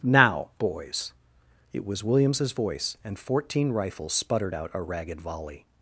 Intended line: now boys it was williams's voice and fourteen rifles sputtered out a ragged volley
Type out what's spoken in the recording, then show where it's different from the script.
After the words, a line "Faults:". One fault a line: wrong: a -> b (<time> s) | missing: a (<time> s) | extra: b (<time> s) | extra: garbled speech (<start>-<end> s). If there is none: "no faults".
now boys it was williams's voice and fourteen rifles sputtered out a ragged volley
Faults:
no faults